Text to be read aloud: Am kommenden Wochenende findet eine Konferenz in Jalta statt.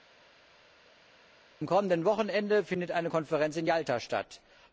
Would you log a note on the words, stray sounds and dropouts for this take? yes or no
no